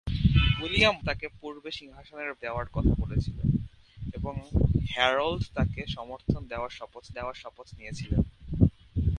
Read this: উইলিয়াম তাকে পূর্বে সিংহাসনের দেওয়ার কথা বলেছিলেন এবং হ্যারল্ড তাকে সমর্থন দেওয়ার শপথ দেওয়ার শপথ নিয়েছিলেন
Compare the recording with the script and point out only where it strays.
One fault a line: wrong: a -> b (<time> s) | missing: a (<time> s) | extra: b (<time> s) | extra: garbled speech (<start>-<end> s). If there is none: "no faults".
no faults